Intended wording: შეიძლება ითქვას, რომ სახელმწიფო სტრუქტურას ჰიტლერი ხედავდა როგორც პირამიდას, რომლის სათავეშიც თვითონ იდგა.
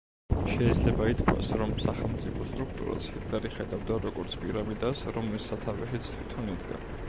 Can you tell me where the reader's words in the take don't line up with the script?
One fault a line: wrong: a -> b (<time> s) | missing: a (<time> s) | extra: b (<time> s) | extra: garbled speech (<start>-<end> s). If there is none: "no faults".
no faults